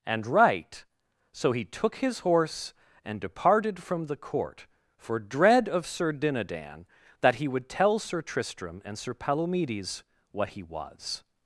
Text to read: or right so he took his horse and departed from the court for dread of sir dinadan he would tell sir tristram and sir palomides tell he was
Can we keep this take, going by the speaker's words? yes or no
no